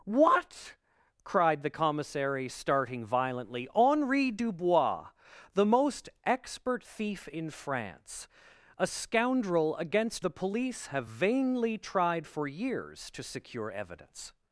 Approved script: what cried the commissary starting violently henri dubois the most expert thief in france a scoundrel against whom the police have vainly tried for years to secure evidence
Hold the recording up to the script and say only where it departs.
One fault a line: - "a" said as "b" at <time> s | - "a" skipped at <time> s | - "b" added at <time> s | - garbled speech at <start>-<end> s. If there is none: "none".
- "whom" skipped at 10.2 s